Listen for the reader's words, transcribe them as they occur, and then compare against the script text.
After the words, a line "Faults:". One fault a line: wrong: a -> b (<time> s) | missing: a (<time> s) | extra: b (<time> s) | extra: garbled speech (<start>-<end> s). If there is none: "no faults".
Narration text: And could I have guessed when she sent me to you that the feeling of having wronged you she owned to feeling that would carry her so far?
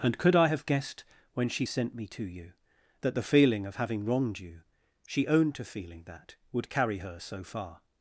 And could I have guessed when she sent me to you that the feeling of having wronged you she owned to feeling that would carry her so far?
Faults:
no faults